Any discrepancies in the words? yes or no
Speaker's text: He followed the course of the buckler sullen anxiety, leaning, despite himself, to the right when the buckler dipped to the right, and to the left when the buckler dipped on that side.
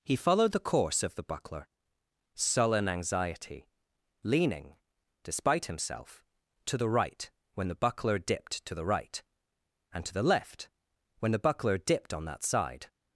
no